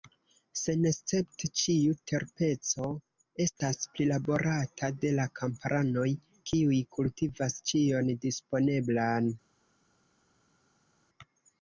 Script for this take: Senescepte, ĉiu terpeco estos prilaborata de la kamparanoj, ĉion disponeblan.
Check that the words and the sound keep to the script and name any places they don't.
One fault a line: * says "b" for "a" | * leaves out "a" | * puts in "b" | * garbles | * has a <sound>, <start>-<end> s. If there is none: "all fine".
* says "estas" for "estos"
* puts in "kiuj kultivas"